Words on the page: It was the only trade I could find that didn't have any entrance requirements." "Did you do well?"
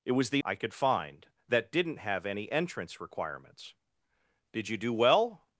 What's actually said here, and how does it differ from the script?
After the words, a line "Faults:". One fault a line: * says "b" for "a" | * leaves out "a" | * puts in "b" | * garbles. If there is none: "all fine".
It was the I could find that didn't have any entrance requirements." "Did you do well?"
Faults:
* leaves out "only trade"